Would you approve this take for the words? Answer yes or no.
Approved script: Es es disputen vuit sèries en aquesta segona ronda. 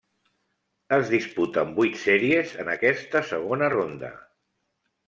no